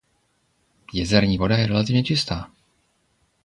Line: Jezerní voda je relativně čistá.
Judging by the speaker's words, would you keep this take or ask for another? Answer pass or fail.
pass